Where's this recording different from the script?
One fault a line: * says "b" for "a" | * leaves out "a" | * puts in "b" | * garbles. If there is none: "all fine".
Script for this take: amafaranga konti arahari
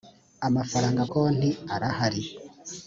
all fine